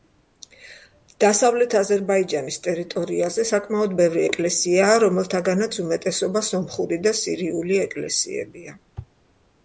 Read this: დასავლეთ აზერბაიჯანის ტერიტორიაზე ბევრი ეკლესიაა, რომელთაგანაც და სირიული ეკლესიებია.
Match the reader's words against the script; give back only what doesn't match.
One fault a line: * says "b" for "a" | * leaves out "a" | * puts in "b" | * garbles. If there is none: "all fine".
* puts in "საკმაოდ"
* puts in "უმეტესობა სომხური"